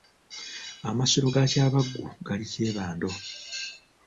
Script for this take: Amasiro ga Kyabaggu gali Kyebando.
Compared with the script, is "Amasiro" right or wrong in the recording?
right